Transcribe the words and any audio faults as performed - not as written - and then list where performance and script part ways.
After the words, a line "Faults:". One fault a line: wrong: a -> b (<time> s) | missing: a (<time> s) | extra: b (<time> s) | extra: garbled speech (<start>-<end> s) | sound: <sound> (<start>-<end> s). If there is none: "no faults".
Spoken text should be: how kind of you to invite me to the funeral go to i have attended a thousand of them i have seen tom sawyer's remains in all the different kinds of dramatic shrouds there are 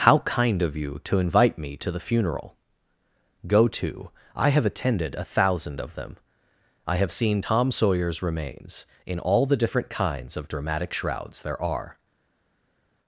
how kind of you to invite me to the funeral go to i have attended a thousand of them i have seen tom sawyer's remains in all the different kinds of dramatic shrouds there are
Faults:
no faults